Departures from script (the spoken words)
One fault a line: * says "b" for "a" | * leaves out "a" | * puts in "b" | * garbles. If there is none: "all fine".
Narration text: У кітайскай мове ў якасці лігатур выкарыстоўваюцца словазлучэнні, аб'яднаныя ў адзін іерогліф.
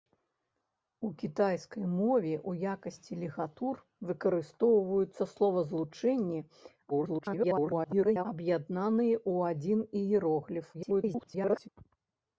* garbles
* garbles